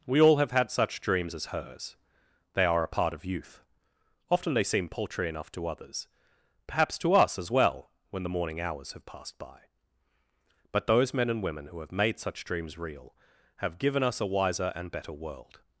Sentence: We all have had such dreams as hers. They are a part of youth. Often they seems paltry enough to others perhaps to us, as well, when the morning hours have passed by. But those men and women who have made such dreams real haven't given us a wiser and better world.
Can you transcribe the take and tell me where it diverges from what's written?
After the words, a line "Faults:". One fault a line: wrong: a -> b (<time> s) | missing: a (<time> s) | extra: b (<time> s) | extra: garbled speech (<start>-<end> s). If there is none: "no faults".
We all have had such dreams as hers. They are a part of youth. Often they seem paltry enough to others perhaps to us, as well, when the morning hours have passed by. But those men and women who have made such dreams real have given us a wiser and better world.
Faults:
wrong: seems -> seem (4.6 s)
wrong: haven't -> have (13.6 s)